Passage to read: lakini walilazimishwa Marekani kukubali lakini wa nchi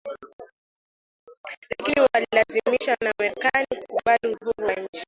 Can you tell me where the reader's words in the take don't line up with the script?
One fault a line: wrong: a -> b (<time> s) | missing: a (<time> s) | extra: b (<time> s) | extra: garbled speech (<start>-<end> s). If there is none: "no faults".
extra: na (3.0 s)
wrong: lakini -> uhuru (4.4 s)